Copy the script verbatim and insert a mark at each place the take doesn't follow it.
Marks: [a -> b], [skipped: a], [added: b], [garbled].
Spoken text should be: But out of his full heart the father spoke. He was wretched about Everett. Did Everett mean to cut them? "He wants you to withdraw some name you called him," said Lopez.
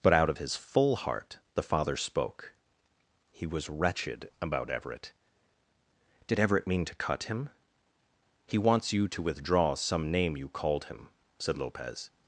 But out of his full heart the father spoke. He was wretched about Everett. Did Everett mean to cut [them? -> him] "He wants you to withdraw some name you called him," said Lopez.